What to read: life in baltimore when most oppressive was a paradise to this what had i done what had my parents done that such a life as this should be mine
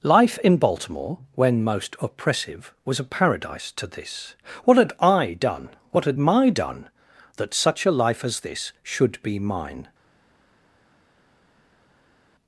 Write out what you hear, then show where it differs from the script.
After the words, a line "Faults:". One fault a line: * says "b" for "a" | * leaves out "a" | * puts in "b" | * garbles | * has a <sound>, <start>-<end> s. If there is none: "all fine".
life in baltimore when most oppressive was a paradise to this what had i done what had my done that such a life as this should be mine
Faults:
* leaves out "parents"